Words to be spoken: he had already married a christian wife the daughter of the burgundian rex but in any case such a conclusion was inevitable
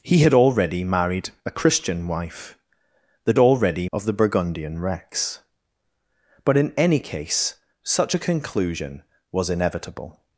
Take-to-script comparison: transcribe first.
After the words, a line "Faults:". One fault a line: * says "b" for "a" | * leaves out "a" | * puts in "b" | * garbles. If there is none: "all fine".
he had already married a christian wife the already of the burgundian rex but in any case such a conclusion was inevitable
Faults:
* says "already" for "daughter"